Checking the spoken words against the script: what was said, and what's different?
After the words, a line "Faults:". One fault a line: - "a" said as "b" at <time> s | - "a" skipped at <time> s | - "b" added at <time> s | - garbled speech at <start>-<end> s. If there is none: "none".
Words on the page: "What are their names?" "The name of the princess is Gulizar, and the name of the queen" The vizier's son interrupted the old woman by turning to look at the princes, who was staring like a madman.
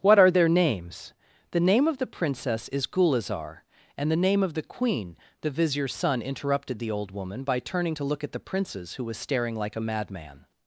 "What are their names?" "The name of the princess is Gulizar, and the name of the queen" The vizier's son interrupted the old woman by turning to look at the princes, who was staring like a madman.
Faults:
none